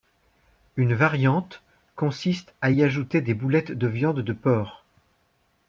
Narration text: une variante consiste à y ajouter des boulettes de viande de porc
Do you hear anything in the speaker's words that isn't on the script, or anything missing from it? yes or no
no